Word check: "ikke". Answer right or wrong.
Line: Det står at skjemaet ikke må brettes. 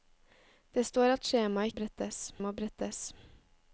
wrong